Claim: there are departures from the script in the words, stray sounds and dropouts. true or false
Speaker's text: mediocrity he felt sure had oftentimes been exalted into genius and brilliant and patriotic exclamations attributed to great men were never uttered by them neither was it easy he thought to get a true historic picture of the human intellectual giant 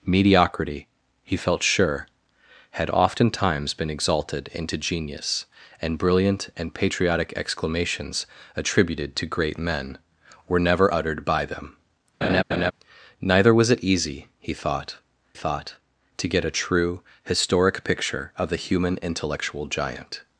true